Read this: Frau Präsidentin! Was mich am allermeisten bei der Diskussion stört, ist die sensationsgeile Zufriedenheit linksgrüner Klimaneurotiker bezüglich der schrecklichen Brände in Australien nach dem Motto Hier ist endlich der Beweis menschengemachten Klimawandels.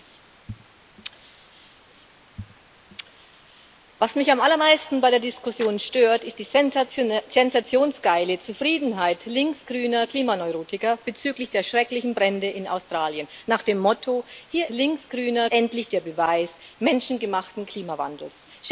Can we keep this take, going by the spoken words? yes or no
no